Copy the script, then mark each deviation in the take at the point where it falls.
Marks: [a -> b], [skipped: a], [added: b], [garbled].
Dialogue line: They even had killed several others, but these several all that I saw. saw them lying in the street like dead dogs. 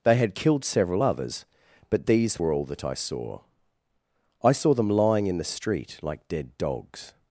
They [skipped: even] had killed several others, but these [several -> were] all that I saw. [added: I] saw them lying in the street like dead dogs.